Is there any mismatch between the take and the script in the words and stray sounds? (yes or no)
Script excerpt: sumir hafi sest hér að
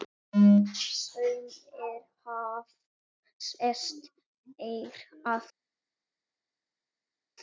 no